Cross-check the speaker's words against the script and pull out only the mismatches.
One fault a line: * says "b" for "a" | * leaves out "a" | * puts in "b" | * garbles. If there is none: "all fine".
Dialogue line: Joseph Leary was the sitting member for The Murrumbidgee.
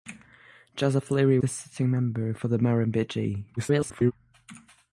* leaves out "was"
* garbles